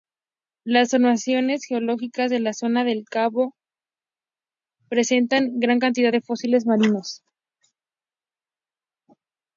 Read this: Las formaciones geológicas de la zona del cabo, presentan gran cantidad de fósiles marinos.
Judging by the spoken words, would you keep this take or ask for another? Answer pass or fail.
pass